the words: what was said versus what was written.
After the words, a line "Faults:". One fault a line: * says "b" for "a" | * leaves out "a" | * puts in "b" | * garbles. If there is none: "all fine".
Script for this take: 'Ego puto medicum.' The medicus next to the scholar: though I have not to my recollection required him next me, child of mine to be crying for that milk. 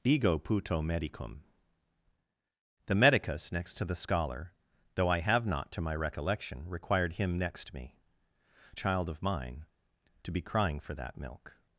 'Ego puto medicum.' The medicus next to the scholar: though I have not to my recollection required him next me, child of mine to be crying for that milk.
Faults:
all fine